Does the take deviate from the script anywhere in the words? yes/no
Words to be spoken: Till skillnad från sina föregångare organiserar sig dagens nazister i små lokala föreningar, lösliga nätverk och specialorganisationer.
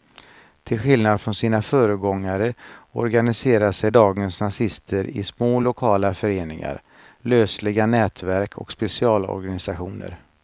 no